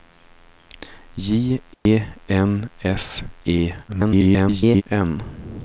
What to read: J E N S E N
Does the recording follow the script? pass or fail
fail